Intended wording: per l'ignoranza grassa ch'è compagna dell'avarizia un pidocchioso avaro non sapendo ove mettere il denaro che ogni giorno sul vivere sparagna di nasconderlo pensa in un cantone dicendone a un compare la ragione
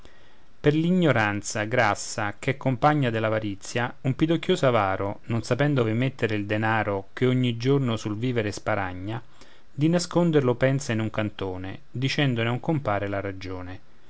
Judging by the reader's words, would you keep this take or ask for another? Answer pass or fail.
pass